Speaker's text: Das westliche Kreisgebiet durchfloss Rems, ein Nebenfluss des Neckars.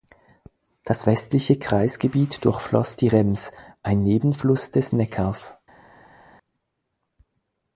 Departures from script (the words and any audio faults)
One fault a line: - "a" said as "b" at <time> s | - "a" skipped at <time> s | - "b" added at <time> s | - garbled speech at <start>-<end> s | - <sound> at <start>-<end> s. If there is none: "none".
- "die" added at 2.9 s